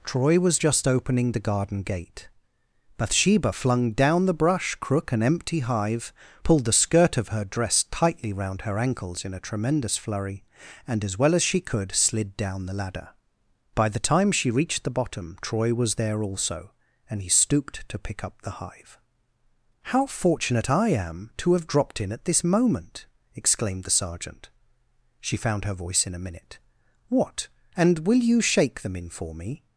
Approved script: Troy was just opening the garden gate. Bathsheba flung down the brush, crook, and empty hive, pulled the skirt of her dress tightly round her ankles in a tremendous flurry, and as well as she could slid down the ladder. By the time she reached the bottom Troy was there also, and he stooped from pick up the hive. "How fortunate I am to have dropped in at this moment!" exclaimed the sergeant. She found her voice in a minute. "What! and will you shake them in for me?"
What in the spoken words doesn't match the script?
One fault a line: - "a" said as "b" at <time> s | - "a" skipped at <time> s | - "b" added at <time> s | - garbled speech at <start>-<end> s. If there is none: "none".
- "from" said as "to" at 17.9 s